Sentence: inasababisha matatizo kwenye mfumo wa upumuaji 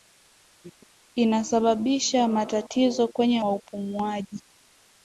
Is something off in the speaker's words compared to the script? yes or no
yes